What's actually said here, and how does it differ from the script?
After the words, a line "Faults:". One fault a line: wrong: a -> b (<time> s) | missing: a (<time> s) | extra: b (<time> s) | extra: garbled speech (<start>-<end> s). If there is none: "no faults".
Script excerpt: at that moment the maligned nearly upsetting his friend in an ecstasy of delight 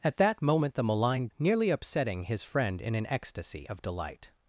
at that moment the maligned nearly upsetting his friend in an ecstasy of delight
Faults:
no faults